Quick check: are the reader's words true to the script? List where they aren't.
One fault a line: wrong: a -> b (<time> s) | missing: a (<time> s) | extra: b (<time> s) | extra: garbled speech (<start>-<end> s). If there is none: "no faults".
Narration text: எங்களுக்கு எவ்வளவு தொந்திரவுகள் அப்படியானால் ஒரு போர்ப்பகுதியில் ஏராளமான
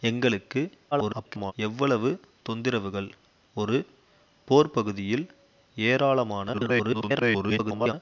extra: garbled speech (0.9-1.5 s)
missing: அப்படியானால் (3.1 s)
extra: garbled speech (6.5-7.9 s)